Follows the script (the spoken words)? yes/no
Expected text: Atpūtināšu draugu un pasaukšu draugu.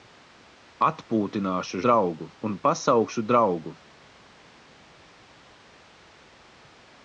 yes